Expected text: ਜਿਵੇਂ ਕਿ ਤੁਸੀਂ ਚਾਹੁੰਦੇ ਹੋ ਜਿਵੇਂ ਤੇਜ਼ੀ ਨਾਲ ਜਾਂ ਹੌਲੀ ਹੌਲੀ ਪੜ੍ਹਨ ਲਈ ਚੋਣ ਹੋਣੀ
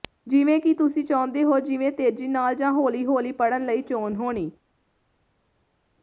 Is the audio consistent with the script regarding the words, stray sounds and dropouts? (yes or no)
yes